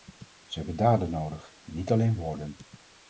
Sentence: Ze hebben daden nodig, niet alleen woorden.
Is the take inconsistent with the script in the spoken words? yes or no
no